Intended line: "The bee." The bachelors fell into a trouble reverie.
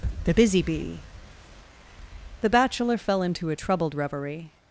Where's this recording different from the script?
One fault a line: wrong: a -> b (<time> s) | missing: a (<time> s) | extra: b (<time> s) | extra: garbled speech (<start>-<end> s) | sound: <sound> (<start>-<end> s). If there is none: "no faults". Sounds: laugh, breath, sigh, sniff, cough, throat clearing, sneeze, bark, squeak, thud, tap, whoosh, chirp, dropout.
extra: busy (0.3 s)
wrong: bachelors -> bachelor (2.5 s)
wrong: trouble -> troubled (3.5 s)